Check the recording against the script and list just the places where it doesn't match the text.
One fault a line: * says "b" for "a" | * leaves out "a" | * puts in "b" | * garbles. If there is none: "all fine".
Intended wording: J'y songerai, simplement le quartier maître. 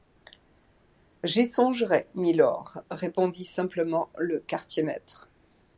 * puts in "mylord répondit"